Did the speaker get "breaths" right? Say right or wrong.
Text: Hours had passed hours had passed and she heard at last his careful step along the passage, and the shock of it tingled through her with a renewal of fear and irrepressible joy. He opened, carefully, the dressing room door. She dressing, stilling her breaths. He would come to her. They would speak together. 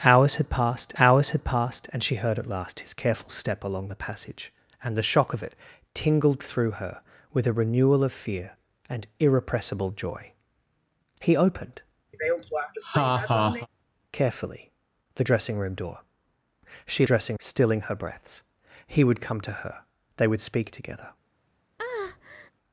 right